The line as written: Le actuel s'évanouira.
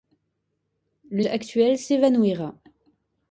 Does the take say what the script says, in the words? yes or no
yes